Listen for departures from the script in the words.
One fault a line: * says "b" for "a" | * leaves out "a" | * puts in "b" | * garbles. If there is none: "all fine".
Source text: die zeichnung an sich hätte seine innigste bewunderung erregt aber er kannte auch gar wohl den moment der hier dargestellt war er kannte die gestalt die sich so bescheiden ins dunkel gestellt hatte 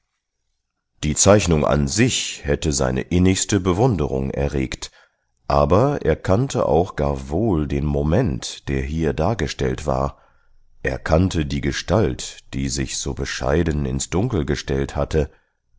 all fine